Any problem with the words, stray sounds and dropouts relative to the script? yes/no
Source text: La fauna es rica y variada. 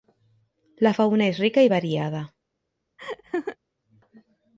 yes